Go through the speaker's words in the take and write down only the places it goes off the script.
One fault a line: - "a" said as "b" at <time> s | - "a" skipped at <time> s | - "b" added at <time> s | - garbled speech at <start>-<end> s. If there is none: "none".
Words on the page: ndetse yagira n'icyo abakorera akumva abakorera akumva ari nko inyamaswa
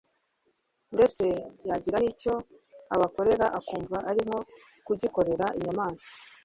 - "abakorera akumva" skipped at 4.0 s
- "kugikorera" added at 4.9 s